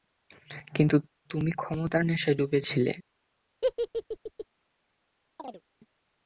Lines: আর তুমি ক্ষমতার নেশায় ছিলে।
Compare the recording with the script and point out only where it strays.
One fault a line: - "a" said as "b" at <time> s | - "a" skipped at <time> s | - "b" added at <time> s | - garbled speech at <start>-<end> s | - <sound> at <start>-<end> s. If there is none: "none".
- "আর" said as "কিন্তু" at 0.8 s
- "ডুবে" added at 2.4 s
- laugh at 3.6-4.5 s
- chirp at 5.4-5.6 s